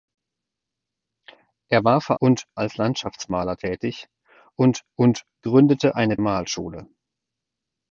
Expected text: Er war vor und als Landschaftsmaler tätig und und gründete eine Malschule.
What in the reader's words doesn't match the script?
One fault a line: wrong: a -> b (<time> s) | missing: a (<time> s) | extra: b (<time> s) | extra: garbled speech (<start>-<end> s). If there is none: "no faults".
no faults